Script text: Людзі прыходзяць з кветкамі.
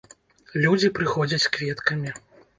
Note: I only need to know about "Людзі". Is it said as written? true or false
true